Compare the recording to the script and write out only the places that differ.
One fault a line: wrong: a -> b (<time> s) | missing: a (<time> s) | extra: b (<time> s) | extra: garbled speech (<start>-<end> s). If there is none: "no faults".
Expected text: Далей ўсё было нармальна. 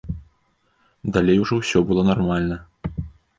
extra: ужо (1.4 s)